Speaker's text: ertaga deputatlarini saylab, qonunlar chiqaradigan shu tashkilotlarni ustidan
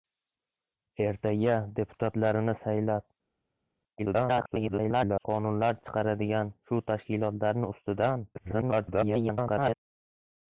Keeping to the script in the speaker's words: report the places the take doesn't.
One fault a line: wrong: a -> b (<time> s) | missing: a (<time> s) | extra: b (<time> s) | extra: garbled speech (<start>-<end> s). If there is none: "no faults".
extra: garbled speech (4.0-5.3 s)
extra: garbled speech (8.3-9.7 s)